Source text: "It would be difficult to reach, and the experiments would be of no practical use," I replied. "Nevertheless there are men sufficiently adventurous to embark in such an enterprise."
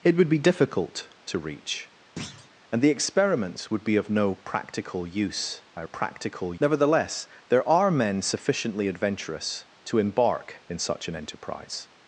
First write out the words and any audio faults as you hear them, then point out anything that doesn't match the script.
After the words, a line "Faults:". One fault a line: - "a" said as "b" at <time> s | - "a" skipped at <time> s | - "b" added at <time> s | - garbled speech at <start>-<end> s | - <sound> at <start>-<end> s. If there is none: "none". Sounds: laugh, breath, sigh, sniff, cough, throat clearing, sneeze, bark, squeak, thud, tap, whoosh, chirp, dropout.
"It would be difficult to reach, and the experiments would be of no practical use," I practical. "Nevertheless there are men sufficiently adventurous to embark in such an enterprise."
Faults:
- thud at 2.2-2.5 s
- "replied" said as "practical" at 5.8 s